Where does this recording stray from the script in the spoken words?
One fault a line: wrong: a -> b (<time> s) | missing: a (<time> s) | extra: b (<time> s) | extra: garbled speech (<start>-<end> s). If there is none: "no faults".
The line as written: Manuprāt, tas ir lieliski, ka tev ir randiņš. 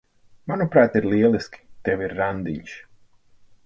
missing: tas (0.9 s)
missing: ka (1.6 s)